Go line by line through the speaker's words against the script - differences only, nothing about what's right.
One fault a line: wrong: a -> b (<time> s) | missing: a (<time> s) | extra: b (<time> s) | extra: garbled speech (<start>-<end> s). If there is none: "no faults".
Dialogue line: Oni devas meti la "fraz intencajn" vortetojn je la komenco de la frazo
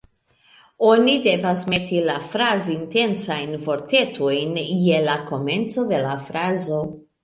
no faults